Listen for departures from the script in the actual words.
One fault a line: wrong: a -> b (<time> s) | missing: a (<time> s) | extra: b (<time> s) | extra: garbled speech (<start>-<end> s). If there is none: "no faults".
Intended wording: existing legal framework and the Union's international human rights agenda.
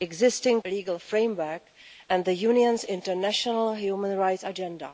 no faults